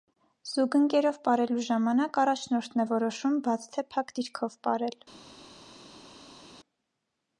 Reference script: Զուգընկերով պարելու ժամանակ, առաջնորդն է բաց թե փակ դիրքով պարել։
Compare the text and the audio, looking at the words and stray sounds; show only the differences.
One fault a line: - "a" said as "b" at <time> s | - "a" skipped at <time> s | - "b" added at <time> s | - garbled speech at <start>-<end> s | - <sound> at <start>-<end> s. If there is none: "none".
- "որոշում" added at 2.9 s